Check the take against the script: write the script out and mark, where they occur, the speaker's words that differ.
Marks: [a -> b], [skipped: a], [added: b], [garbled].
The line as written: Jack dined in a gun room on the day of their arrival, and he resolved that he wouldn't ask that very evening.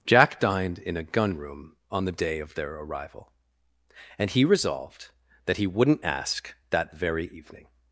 Jack dined in a gun room on the day of their arrival, and he resolved that he wouldn't ask that very evening.